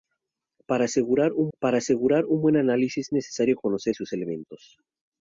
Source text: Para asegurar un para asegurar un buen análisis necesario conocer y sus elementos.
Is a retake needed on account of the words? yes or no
no